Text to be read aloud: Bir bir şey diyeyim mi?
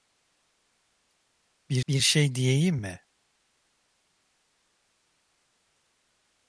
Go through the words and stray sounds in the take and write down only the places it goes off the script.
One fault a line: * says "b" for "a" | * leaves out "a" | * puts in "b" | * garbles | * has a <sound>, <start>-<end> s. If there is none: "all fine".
all fine